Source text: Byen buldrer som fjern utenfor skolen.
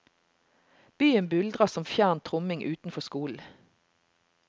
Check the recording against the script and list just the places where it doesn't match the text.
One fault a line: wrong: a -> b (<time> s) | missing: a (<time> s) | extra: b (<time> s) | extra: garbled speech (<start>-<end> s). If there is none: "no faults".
extra: tromming (2.2 s)